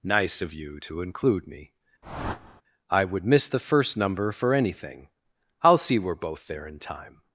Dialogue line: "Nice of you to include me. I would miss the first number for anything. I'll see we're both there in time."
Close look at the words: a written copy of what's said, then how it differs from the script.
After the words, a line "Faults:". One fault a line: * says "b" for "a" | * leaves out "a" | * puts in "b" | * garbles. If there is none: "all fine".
"Nice of you to include me. I would miss the first number for anything. I'll see we're both there in time."
Faults:
all fine